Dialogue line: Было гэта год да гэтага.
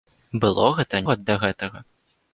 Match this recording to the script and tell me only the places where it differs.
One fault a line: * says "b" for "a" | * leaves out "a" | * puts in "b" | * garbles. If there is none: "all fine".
all fine